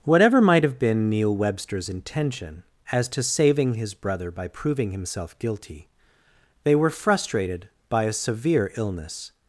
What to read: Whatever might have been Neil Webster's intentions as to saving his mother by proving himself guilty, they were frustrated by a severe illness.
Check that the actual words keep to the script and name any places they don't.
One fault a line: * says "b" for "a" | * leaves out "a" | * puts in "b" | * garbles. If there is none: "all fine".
* says "intention" for "intentions"
* says "brother" for "mother"